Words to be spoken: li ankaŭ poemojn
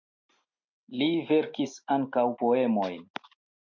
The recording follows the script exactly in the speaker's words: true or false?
false